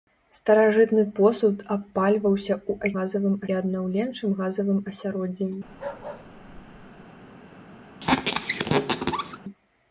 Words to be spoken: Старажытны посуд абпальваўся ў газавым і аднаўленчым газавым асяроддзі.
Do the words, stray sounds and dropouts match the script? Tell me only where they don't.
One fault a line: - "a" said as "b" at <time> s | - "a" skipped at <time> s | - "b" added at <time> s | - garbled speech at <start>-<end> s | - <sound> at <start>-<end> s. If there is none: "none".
- bark at 5.7-7.1 s
- squeak at 8.0-9.4 s